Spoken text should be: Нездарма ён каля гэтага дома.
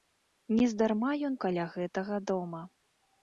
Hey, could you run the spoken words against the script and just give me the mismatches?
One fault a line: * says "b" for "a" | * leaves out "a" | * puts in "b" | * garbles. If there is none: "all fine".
all fine